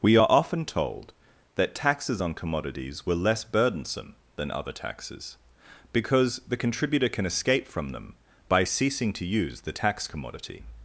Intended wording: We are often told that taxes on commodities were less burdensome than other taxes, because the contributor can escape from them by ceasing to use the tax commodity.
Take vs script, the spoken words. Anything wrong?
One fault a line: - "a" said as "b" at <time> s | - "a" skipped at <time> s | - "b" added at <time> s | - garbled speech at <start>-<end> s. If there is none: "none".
none